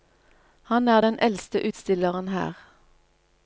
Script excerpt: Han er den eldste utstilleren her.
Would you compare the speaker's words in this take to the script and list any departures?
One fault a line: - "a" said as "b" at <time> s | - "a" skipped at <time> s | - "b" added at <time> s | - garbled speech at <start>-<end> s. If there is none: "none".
none